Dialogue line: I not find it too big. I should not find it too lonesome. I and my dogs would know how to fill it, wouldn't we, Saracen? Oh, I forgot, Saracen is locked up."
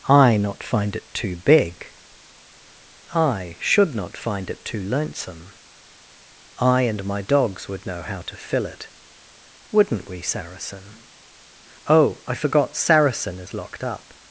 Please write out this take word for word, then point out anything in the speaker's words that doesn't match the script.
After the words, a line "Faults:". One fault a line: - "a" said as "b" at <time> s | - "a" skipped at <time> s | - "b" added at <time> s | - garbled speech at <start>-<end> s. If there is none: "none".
I not find it too big. I should not find it too lonesome. I and my dogs would know how to fill it, wouldn't we, Saracen? Oh, I forgot, Saracen is locked up."
Faults:
none